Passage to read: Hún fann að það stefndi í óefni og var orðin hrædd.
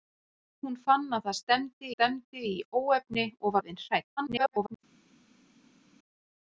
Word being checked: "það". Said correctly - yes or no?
yes